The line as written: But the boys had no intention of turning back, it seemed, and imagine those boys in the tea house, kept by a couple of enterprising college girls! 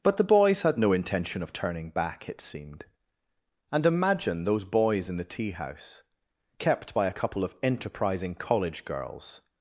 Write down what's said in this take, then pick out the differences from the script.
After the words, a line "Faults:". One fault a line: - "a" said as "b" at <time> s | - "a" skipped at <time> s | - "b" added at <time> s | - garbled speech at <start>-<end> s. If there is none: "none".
But the boys had no intention of turning back, it seemed, and imagine those boys in the tea house, kept by a couple of enterprising college girls!
Faults:
none